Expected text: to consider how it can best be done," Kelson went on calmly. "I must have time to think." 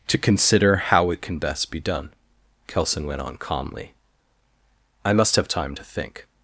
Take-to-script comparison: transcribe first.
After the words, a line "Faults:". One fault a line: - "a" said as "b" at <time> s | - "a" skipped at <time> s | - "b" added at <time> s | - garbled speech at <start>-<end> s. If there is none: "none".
to consider how it can best be done," Kelson went on calmly. "I must have time to think."
Faults:
none